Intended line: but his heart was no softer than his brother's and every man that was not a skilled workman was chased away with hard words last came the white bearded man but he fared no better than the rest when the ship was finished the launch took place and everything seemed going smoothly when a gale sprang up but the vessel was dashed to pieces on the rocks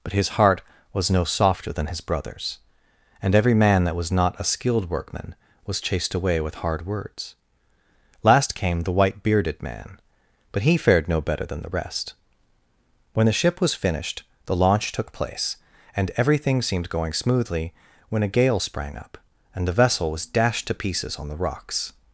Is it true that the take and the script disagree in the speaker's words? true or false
true